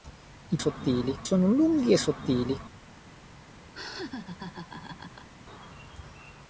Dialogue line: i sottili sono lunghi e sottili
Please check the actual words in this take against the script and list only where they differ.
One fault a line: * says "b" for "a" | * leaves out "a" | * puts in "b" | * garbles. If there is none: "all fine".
all fine